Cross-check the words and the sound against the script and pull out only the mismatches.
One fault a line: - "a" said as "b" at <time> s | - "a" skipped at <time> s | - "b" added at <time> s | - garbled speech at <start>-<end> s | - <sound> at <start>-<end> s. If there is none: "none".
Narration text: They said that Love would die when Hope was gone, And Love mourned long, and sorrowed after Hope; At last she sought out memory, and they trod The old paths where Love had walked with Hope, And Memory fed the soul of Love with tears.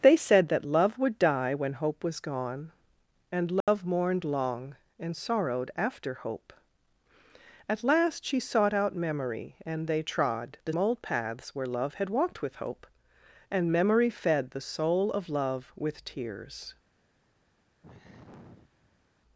- dropout at 3.6-3.7 s
- sigh at 17.8-19.0 s